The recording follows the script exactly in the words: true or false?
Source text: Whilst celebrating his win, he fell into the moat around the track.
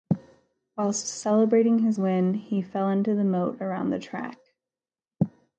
true